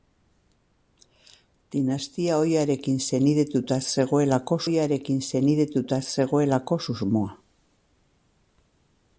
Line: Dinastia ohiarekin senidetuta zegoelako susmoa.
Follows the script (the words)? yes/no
no